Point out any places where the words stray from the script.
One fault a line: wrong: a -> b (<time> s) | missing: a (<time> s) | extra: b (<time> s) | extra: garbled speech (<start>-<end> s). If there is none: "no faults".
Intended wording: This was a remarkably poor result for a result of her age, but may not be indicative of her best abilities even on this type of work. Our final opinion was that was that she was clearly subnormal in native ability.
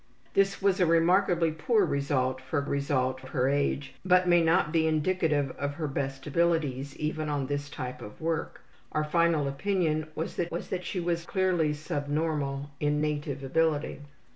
no faults